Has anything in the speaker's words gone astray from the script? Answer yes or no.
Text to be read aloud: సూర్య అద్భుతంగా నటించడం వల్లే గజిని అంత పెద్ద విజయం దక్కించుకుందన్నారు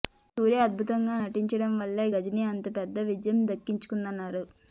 no